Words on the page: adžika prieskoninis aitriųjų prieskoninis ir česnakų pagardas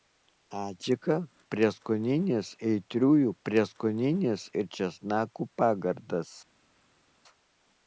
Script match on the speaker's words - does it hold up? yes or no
yes